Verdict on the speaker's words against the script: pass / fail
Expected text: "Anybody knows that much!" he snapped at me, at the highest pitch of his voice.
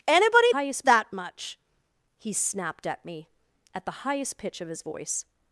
fail